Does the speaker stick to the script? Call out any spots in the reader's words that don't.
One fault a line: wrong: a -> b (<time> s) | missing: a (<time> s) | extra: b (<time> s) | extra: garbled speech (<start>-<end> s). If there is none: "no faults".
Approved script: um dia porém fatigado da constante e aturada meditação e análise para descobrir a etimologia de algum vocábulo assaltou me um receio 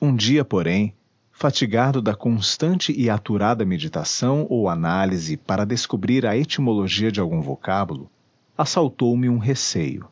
wrong: e -> ou (4.5 s)